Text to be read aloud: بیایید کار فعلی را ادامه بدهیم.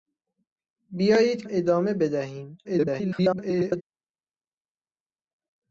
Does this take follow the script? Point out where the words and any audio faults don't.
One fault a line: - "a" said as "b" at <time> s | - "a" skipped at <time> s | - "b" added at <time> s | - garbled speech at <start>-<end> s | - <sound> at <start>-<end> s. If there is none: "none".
- "کار فعلی را" skipped at 1.4 s
- garbled speech at 2.6-3.8 s